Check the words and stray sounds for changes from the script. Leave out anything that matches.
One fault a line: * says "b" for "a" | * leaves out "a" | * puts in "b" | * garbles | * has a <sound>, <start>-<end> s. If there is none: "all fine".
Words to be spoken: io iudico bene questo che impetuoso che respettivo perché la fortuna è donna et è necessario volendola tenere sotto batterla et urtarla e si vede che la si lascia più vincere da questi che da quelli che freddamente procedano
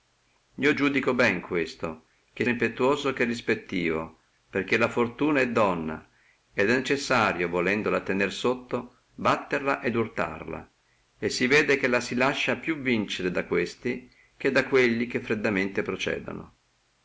all fine